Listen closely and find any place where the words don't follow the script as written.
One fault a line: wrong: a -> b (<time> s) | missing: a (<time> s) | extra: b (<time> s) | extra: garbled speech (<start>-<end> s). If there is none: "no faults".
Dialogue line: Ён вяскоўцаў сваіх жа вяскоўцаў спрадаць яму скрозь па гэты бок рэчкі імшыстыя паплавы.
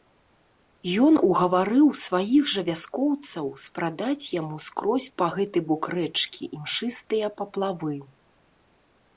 wrong: вяскоўцаў -> угаварыў (1.3 s)